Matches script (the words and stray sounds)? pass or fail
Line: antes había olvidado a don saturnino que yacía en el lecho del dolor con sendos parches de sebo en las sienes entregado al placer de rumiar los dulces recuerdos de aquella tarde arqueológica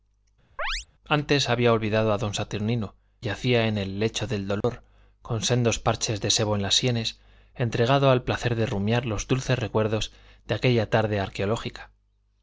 fail